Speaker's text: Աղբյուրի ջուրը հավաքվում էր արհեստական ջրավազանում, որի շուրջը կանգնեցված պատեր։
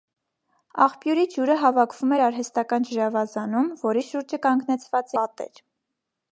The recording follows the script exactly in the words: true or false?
true